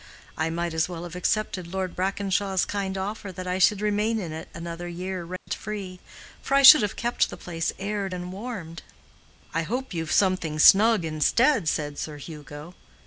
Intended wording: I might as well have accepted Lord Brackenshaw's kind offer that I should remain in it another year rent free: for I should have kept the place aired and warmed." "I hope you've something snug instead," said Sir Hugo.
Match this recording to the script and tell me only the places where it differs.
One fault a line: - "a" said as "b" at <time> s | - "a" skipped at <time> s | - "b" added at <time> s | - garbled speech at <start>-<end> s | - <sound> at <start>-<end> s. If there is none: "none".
- dropout at 5.4-5.5 s